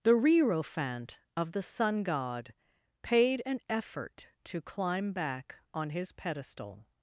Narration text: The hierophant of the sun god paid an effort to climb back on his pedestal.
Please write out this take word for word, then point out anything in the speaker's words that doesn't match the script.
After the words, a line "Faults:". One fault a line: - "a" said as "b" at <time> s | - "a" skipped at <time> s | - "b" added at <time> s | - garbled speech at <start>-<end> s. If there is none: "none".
The hierophant of the sun god paid an effort to climb back on his pedestal.
Faults:
none